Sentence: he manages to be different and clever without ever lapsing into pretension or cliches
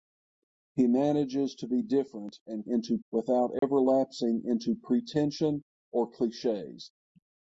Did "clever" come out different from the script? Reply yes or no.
yes